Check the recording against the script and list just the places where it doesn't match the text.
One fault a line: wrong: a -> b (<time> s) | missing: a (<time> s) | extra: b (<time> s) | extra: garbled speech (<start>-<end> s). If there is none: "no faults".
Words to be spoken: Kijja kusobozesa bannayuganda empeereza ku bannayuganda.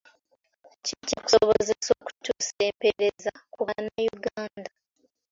wrong: bannayuganda -> okutuusa (2.0 s)